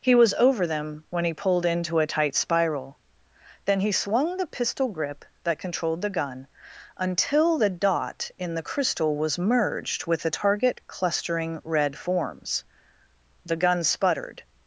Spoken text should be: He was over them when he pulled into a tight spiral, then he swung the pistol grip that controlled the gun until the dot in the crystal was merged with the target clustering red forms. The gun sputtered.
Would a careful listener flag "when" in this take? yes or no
no